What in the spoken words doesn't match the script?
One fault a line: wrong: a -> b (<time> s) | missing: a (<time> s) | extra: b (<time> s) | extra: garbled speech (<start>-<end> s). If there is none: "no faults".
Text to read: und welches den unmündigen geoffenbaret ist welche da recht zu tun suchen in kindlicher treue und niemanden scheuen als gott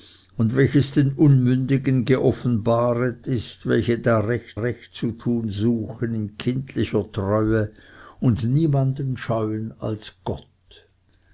extra: recht (4.6 s)